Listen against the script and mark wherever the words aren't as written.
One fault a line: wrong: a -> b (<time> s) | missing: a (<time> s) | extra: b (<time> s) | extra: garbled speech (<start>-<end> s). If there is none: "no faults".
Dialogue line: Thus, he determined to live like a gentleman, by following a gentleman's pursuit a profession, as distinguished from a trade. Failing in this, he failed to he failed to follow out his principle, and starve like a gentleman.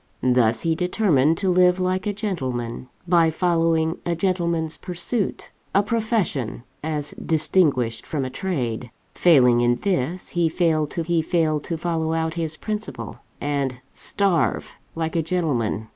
no faults